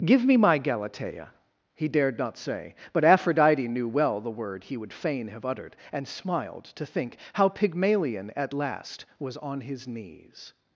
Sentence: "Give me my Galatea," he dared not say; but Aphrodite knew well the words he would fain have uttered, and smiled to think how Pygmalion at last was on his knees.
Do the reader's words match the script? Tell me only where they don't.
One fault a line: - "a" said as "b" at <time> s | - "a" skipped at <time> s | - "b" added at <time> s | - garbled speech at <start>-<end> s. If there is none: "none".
- "words" said as "word" at 4.3 s